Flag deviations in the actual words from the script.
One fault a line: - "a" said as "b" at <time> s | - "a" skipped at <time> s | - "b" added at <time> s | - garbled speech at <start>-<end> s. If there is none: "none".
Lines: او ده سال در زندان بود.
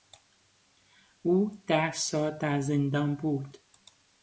none